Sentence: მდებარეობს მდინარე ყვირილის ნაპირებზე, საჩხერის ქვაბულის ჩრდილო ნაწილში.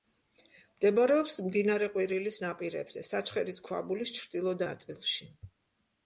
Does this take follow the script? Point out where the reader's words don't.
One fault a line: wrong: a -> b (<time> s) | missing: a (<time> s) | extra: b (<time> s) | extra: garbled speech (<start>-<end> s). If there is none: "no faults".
no faults